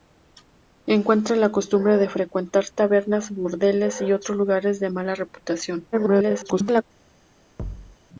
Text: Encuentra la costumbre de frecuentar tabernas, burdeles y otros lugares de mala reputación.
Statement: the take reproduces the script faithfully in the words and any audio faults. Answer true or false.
false